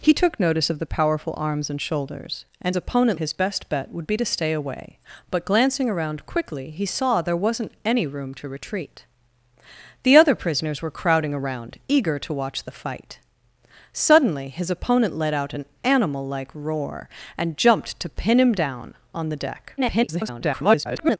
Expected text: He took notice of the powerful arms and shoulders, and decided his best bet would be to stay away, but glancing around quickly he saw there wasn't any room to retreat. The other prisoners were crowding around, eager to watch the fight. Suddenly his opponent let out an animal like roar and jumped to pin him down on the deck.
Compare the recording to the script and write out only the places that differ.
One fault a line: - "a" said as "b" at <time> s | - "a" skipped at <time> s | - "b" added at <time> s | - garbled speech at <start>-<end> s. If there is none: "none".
- "decided" said as "opponent" at 2.8 s
- garbled speech at 19.8-21.2 s